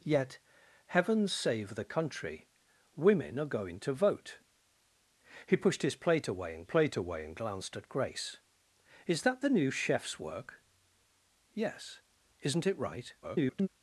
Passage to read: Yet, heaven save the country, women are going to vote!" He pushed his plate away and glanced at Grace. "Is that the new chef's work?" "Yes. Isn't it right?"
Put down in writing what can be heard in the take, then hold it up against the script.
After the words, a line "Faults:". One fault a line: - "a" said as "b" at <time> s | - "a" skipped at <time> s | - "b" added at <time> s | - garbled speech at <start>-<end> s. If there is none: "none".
Yet, heaven save the country, women are going to vote!" He pushed his plate away and plate away and glanced at Grace. "Is that the new chef's work?" "Yes. Isn't it right?" [garbled]
Faults:
- "plate away and" added at 6.6 s
- garbled speech at 13.2-13.7 s